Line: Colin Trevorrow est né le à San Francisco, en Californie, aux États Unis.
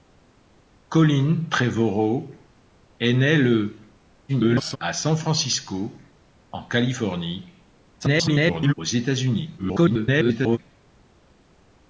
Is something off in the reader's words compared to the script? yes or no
yes